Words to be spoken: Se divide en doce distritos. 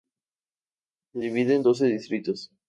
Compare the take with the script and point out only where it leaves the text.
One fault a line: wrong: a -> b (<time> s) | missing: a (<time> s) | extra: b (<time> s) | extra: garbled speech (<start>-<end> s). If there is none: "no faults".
no faults